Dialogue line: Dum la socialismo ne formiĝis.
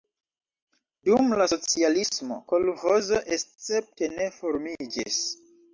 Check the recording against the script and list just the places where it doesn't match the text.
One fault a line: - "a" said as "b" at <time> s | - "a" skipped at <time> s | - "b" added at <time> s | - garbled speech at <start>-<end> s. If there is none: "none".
- "kolĥozo escepte" added at 2.5 s